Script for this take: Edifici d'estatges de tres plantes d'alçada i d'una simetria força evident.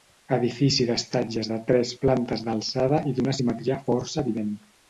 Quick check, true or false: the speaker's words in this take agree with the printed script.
true